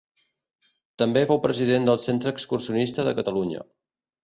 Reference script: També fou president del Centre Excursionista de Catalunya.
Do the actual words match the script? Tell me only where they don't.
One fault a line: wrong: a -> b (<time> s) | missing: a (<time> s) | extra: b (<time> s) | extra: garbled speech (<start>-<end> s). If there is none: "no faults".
no faults